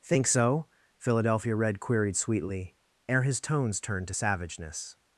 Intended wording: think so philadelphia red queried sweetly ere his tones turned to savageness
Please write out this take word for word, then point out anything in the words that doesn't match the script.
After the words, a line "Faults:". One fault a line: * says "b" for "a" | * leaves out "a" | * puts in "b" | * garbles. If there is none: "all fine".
think so philadelphia red queried sweetly ere his tones turned to savageness
Faults:
all fine